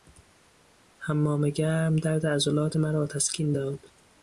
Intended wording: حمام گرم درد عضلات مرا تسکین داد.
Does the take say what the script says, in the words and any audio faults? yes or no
yes